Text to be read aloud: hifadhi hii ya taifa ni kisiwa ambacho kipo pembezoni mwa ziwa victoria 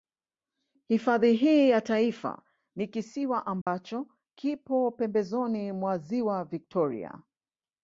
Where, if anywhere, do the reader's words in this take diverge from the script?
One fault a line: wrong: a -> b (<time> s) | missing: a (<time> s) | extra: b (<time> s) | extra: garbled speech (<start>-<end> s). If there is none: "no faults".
no faults